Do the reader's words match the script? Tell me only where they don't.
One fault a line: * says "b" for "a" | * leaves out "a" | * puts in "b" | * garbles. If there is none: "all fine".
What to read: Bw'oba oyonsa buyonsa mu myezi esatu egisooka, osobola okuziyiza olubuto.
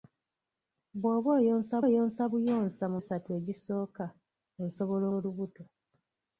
* puts in "oyonsa"
* leaves out "myezi"
* leaves out "okuziyiza"